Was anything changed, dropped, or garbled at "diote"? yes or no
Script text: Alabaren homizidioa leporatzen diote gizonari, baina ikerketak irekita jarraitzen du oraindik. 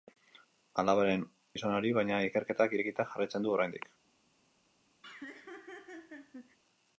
yes